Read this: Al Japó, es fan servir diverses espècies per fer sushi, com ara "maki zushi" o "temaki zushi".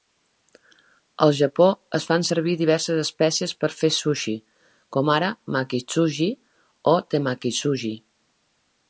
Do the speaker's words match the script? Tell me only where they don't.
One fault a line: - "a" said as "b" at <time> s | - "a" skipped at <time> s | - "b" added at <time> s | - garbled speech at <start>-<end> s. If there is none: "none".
none